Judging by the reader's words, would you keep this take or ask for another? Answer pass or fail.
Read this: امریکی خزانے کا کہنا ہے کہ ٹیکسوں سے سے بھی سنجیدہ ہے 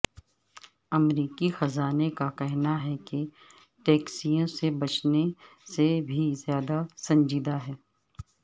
fail